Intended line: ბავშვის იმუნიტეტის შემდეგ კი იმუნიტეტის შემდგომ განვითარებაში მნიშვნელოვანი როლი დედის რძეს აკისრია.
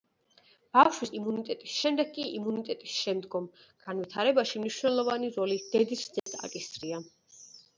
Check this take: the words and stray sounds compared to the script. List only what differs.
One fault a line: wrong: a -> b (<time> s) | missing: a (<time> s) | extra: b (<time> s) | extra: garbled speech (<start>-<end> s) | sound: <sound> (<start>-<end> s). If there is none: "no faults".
sound: dropout (6.2-6.3 s)